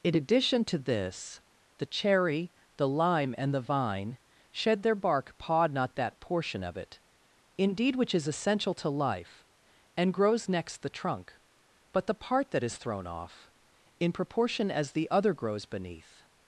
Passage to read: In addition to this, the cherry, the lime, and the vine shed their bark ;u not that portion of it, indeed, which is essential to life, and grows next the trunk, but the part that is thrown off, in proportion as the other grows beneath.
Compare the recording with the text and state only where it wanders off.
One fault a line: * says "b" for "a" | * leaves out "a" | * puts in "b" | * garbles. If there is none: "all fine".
* says "pod" for "u"